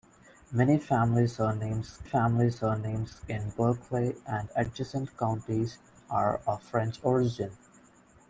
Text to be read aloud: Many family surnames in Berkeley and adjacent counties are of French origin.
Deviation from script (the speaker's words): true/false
true